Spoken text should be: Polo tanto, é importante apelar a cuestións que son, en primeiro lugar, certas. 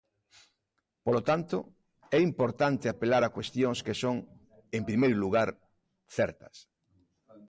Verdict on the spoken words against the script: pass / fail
pass